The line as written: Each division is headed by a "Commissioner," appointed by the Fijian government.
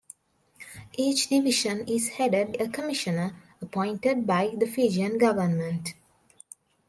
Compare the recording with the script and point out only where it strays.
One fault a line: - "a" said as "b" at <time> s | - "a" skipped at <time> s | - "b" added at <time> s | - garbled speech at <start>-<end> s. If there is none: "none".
- "by" skipped at 2.6 s